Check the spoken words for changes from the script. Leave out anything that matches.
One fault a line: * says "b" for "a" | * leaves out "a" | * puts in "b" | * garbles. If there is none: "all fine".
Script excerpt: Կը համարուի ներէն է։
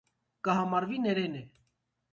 all fine